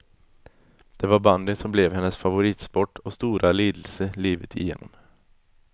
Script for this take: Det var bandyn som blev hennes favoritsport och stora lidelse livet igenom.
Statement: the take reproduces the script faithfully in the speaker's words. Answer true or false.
true